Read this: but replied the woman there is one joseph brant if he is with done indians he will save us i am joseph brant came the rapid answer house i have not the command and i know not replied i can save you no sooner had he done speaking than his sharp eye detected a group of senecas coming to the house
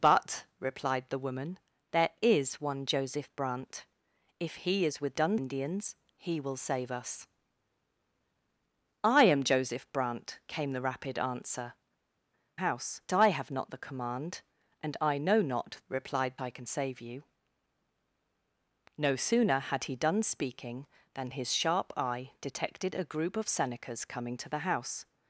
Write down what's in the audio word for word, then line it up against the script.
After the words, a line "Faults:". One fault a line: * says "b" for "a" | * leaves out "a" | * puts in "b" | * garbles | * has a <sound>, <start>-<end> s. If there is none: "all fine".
but replied the woman there is one joseph brant if he is with done indians he will save us i am joseph brant came the rapid answer house i have not the command and i know not replied i can save you no sooner had he done speaking than his sharp eye detected a group of senecas coming to the house
Faults:
all fine